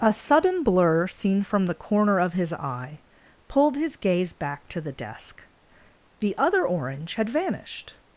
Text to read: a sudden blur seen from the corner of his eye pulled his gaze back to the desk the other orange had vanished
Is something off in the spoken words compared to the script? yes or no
no